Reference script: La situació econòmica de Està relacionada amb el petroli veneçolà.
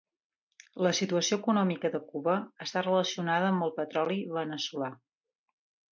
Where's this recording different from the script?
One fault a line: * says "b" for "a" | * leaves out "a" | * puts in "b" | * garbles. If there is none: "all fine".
* puts in "Cuba"